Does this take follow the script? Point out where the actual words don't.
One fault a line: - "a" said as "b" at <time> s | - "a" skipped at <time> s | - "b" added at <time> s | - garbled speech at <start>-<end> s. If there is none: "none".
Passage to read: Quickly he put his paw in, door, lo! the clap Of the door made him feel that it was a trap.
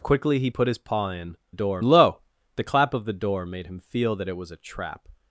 none